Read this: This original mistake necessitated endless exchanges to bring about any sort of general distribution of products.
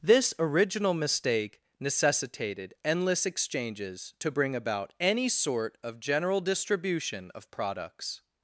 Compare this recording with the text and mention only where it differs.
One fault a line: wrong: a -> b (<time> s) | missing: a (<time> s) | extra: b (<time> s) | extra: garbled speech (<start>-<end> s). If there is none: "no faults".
no faults